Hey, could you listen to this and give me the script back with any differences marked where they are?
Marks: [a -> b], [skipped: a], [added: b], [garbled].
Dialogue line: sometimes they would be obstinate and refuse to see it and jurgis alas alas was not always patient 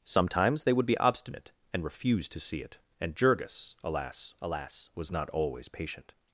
sometimes they would be obstinate and refuse to see it and jurgis alas alas was not always patient